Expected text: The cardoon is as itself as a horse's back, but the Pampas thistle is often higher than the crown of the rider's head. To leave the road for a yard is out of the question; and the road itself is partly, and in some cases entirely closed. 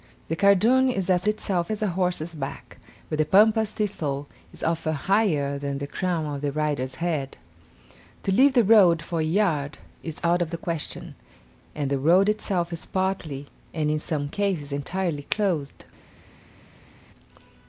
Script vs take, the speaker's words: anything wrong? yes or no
no